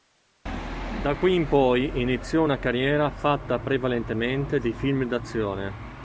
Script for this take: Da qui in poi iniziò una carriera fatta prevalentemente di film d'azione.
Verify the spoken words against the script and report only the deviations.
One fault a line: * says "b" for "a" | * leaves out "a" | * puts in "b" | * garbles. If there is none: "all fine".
all fine